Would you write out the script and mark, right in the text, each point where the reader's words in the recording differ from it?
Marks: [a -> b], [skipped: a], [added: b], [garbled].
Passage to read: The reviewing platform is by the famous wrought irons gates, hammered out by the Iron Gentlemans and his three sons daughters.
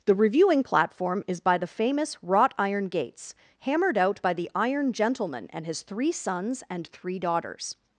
The reviewing platform is by the famous wrought [irons -> iron] gates, hammered out by the Iron [Gentlemans -> Gentleman] and his three sons [added: and three] daughters.